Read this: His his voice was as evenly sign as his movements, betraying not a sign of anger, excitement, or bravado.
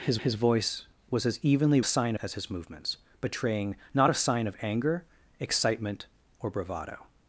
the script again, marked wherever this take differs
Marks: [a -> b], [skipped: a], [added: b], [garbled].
His his voice was as evenly sign as his movements, betraying not a sign of anger, excitement, or bravado.